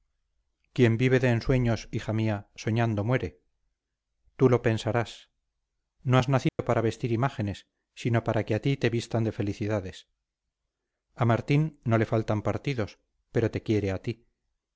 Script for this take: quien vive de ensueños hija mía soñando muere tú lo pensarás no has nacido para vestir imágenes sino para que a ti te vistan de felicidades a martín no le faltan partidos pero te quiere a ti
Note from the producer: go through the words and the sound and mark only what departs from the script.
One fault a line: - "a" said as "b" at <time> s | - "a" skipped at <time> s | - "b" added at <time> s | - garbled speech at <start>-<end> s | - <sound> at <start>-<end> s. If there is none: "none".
- dropout at 6.5-6.6 s